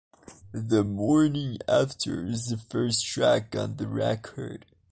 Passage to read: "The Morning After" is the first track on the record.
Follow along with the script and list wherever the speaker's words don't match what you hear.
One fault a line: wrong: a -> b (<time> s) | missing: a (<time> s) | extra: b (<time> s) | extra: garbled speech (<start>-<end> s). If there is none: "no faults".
no faults